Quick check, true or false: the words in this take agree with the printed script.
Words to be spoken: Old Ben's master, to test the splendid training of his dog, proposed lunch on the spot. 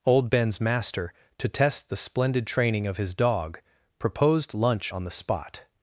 true